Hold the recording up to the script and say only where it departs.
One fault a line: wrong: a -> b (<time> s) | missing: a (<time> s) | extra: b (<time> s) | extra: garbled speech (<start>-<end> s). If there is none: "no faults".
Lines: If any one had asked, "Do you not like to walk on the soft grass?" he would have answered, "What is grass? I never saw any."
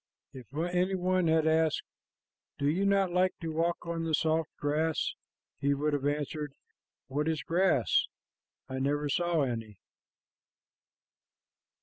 no faults